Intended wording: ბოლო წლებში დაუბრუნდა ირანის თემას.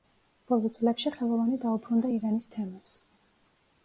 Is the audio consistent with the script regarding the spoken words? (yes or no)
no